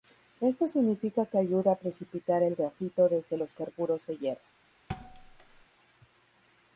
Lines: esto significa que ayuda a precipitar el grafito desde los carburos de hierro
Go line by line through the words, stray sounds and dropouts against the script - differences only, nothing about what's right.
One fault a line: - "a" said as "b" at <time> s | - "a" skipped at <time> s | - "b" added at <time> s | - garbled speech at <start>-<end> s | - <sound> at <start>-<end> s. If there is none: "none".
- thud at 4.9-5.7 s